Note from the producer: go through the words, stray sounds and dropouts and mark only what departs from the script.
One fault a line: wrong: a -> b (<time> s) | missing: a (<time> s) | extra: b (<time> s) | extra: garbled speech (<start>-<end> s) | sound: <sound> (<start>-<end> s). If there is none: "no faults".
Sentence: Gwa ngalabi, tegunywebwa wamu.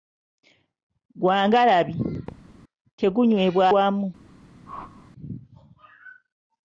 sound: thud (2.3-2.6 s)
sound: whoosh (4.7-5.1 s)